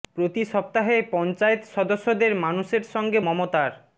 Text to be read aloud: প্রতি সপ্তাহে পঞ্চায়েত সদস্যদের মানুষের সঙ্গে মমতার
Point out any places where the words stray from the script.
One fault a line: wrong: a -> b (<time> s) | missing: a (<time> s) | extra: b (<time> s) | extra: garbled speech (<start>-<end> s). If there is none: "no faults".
no faults